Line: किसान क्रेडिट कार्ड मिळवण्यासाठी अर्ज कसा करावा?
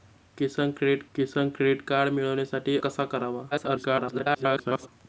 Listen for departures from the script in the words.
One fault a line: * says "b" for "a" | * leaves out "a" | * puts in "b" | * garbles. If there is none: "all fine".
* puts in "किसान क्रेडिट"
* leaves out "अर्ज"
* garbles